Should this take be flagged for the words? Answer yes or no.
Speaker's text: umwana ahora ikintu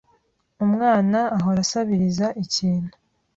yes